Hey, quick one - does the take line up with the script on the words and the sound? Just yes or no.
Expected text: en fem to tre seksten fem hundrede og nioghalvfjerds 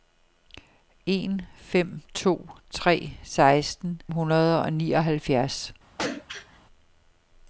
no